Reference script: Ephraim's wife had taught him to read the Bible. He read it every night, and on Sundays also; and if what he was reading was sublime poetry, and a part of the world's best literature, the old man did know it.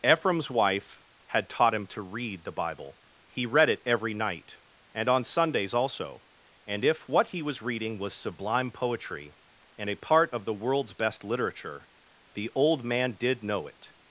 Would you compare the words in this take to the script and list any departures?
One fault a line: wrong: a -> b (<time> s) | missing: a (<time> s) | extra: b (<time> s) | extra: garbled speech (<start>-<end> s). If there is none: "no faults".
no faults